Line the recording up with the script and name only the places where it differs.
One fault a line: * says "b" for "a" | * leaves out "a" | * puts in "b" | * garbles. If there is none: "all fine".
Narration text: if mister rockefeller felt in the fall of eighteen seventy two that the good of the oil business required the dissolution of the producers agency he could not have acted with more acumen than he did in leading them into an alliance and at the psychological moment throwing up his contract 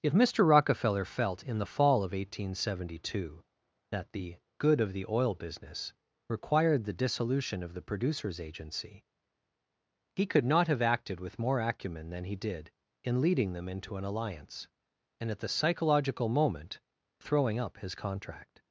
all fine